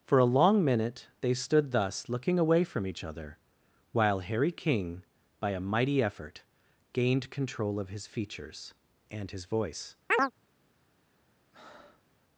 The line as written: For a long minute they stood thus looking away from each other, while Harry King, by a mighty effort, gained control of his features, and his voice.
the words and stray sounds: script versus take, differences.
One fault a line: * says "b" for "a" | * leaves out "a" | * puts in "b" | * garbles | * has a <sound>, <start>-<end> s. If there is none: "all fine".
* has a chirp, 10.1-10.3 s
* has a breath, 11.5-12.1 s